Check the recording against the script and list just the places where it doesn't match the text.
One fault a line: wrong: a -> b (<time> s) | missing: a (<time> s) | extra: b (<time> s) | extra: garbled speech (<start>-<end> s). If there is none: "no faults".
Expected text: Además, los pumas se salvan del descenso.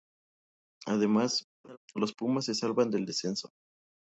no faults